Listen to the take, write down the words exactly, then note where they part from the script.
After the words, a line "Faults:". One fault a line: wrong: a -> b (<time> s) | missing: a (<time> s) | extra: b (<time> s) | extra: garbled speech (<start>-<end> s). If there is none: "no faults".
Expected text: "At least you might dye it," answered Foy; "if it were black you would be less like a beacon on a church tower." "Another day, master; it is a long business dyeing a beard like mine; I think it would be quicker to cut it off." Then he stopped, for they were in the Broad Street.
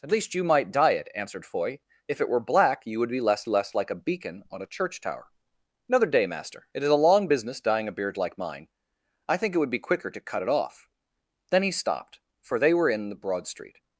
"At least you might dye it," answered Foy; "if it were black you would be less less like a beacon on a church tower." "Another day, master; it is a long business dyeing a beard like mine; I think it would be quicker to cut it off." Then he stopped, for they were in the Broad Street.
Faults:
extra: less (3.5 s)